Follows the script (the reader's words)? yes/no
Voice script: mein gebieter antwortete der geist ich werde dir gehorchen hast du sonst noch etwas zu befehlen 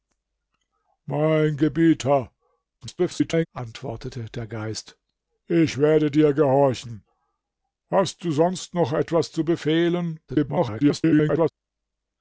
no